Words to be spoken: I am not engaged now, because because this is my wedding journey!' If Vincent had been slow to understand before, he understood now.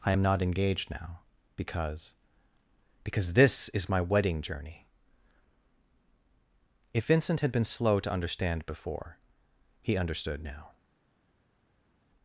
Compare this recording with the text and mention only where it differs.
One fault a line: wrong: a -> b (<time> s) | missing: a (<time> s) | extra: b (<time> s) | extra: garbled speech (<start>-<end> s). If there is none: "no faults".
no faults